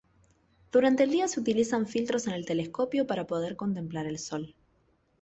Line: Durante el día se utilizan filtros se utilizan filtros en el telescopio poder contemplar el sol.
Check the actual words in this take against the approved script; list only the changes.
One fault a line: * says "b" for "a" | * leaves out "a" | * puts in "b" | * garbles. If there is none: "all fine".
* leaves out "se utilizan filtros"
* puts in "para"